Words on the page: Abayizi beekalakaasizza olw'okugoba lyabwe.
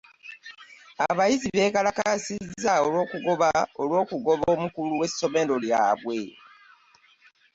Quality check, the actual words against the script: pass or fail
fail